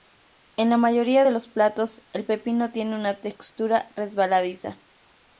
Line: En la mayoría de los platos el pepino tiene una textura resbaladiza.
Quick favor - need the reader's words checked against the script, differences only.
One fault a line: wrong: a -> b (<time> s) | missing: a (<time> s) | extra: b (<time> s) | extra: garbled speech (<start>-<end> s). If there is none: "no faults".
no faults